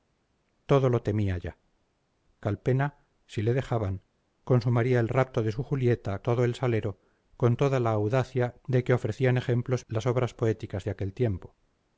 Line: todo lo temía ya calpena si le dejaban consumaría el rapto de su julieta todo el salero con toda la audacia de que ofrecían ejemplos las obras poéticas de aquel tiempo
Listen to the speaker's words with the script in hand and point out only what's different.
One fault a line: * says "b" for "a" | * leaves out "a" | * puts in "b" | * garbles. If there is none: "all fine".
all fine